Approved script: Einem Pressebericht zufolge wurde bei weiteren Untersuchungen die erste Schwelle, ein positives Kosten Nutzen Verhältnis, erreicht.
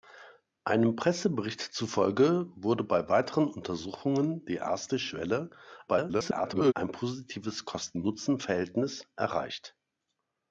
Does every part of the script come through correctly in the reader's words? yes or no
no